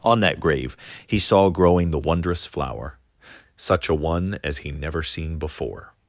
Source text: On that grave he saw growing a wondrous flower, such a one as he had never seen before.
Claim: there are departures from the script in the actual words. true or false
true